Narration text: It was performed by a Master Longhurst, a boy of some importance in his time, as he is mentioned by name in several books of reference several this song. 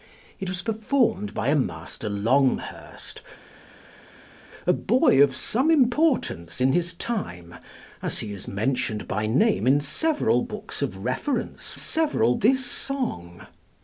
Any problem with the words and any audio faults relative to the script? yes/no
no